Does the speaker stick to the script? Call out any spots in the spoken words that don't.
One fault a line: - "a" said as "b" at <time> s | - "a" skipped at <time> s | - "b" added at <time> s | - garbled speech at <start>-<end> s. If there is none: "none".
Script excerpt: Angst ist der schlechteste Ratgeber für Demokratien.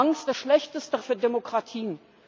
- "ist" skipped at 0.3 s
- "Ratgeber" skipped at 1.0 s